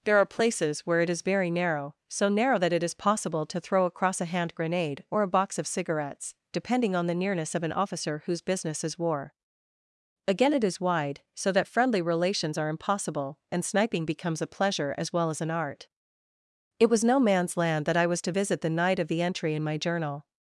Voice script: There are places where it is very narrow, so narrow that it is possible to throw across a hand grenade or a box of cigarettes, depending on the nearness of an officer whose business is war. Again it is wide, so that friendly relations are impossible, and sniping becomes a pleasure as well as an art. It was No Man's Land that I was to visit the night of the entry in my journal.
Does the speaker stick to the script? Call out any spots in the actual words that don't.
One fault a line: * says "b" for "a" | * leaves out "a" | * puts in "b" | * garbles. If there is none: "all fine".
all fine